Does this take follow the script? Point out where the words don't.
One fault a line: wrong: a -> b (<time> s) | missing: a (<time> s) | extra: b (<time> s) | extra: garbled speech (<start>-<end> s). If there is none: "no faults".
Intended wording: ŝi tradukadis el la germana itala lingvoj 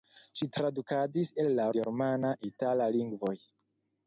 no faults